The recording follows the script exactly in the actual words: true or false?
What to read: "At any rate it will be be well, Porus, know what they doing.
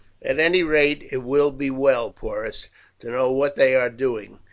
false